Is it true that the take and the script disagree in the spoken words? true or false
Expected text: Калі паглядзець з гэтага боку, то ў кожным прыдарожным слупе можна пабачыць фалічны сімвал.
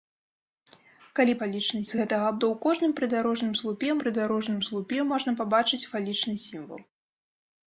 true